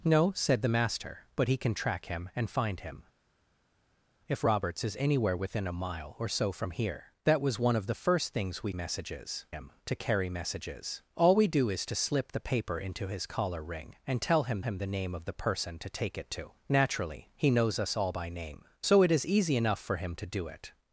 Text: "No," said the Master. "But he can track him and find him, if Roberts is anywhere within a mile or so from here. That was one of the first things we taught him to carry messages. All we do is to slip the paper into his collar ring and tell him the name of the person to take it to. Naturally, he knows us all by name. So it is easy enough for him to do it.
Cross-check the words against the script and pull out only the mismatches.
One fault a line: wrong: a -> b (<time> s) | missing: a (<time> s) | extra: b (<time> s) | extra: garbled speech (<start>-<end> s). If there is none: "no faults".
wrong: taught -> messages (8.7 s)
extra: him (14.6 s)